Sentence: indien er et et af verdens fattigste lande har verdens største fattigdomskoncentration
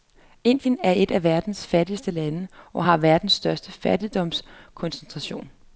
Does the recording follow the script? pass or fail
fail